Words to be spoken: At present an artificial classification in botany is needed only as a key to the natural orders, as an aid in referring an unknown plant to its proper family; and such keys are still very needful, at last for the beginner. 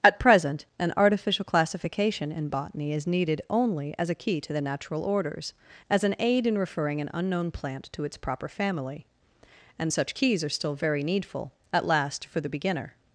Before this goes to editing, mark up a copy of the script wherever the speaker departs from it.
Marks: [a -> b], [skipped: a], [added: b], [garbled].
At present an artificial classification in botany is needed only as a key to the natural orders, as an aid in referring an unknown plant to its proper family; and such keys are still very needful, at last for the beginner.